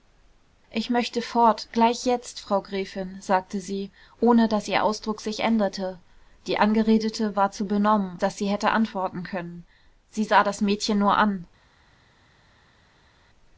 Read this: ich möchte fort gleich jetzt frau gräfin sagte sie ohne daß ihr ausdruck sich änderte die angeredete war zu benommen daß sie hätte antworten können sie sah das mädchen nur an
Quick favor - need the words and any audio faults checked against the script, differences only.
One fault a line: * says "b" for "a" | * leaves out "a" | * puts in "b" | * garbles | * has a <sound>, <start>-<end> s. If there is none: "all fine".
all fine